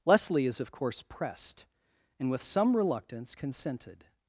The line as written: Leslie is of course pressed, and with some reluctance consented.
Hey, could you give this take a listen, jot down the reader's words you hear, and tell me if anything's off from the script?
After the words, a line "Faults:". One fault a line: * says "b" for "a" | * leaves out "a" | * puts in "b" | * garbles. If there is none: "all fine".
Leslie is of course pressed, and with some reluctance consented.
Faults:
all fine